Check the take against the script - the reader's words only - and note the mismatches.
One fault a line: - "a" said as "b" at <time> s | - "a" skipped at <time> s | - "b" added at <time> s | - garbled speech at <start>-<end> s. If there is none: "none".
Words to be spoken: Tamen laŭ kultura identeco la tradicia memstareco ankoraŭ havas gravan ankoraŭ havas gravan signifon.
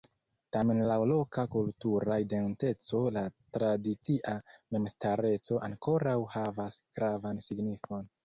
- "loka" added at 1.1 s
- "ankoraŭ havas gravan" skipped at 7.5 s